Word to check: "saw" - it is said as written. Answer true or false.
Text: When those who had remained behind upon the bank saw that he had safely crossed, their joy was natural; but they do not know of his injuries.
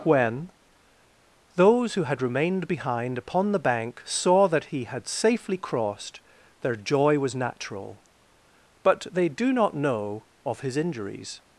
true